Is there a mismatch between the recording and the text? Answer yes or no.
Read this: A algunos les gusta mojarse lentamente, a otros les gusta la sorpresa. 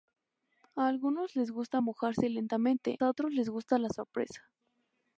no